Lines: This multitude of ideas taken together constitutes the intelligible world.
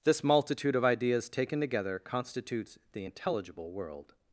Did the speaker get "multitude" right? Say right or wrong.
right